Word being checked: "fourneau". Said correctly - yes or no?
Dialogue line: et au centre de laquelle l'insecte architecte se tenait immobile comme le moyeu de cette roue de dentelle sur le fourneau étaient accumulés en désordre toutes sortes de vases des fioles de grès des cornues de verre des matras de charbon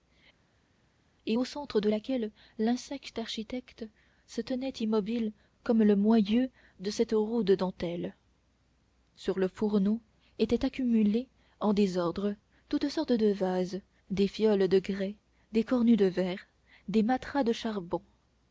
yes